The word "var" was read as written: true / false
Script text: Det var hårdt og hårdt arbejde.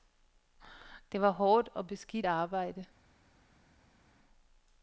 true